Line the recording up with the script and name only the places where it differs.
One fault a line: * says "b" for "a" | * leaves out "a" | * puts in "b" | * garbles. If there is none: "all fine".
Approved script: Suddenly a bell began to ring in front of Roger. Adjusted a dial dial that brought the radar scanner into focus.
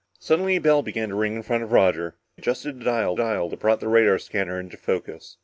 all fine